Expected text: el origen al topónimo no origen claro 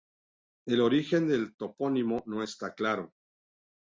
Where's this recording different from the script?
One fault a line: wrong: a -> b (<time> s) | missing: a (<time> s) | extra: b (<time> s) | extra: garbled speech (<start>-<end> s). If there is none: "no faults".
wrong: al -> del (1.3 s)
wrong: origen -> está (2.4 s)